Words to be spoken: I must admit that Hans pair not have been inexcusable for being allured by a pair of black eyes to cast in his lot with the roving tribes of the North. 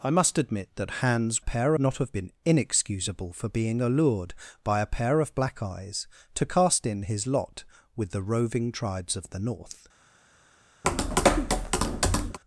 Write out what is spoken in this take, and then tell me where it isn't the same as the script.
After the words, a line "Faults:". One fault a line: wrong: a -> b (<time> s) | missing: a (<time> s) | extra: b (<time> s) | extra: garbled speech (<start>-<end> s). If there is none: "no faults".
I must admit that Hans pair not have been inexcusable for being allured by a pair of black eyes to cast in his lot with the roving tribes of the North.
Faults:
no faults